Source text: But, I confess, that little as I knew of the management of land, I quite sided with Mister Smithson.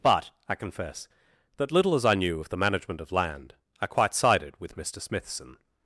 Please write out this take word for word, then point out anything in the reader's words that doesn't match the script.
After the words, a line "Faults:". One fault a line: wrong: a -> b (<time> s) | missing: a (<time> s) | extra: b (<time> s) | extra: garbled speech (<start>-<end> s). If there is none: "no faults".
But, I confess, that little as I knew of the management of land, I quite sided with Mister Smithson.
Faults:
no faults